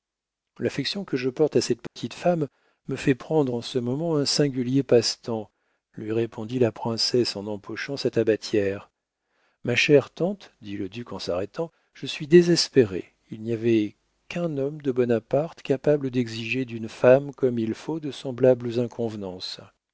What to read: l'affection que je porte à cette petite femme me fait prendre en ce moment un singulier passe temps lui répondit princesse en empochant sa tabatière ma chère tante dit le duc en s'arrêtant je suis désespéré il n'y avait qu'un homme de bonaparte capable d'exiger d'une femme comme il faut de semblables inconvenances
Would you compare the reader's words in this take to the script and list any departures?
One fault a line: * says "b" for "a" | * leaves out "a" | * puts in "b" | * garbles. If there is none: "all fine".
* puts in "la"